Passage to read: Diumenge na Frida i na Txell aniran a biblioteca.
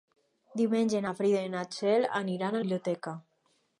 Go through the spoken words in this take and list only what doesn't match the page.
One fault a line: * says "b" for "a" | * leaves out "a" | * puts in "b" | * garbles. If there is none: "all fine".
all fine